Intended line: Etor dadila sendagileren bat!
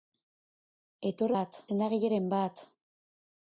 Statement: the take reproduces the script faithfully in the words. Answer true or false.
false